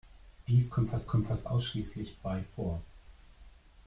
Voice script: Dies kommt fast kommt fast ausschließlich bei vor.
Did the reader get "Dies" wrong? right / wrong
right